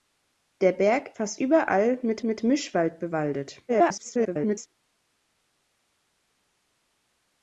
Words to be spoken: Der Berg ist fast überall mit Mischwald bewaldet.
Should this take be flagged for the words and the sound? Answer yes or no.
yes